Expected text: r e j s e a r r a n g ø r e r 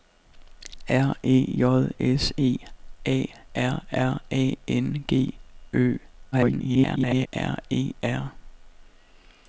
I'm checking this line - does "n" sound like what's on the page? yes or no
yes